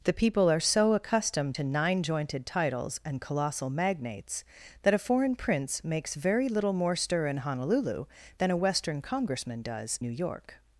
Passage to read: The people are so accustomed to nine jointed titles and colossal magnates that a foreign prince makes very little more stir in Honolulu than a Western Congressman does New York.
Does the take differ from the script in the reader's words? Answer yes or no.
no